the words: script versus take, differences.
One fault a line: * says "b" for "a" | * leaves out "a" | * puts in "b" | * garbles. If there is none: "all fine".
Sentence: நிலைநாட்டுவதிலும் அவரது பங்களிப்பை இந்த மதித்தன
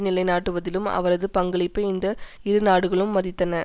* puts in "இரு நாடுகளும்"